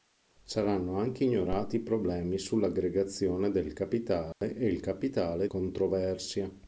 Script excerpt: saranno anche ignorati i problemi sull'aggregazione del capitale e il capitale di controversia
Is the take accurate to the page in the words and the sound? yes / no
no